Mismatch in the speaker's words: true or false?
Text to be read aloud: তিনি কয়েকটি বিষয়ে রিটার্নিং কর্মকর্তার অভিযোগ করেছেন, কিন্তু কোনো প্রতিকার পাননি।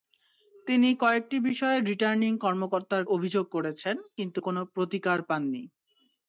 false